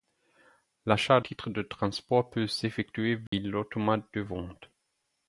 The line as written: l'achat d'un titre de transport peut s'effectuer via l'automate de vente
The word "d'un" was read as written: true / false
false